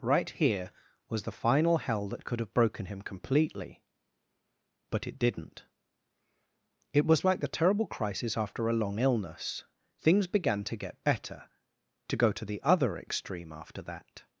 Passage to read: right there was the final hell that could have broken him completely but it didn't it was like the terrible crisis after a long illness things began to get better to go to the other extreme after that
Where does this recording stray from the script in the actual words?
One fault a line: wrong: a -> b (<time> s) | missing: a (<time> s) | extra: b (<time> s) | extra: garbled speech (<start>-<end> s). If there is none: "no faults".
wrong: there -> here (0.3 s)